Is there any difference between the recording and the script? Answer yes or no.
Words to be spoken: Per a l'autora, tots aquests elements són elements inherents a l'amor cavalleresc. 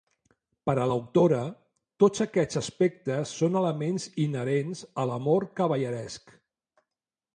yes